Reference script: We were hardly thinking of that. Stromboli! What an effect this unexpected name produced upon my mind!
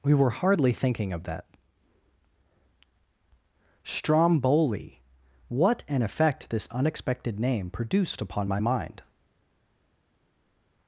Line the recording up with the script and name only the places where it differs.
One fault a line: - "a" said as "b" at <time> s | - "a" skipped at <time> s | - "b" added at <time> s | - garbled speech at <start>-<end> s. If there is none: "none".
none